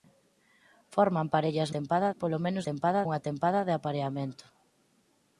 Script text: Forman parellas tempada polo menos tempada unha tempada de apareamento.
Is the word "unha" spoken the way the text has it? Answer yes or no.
yes